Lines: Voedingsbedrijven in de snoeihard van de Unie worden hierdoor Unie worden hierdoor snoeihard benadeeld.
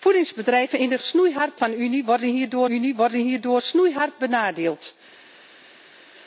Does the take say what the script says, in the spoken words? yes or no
yes